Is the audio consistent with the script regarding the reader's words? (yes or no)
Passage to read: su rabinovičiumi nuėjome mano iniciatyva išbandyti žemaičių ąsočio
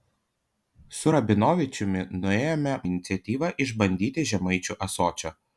no